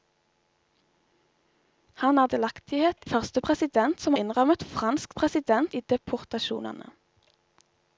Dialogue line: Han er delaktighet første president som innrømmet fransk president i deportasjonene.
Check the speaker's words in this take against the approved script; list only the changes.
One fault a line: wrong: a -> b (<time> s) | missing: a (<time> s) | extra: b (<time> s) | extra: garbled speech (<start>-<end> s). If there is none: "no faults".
no faults